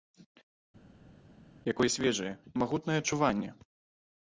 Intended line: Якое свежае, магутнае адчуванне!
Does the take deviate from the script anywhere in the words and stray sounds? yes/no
no